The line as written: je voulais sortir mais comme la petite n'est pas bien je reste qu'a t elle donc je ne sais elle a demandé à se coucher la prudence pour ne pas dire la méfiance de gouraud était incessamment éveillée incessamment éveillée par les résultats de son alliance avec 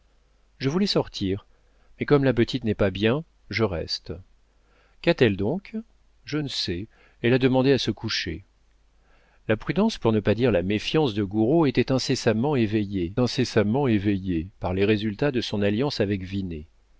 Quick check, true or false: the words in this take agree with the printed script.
true